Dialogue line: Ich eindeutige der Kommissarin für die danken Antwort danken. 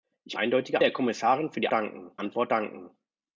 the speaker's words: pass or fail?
pass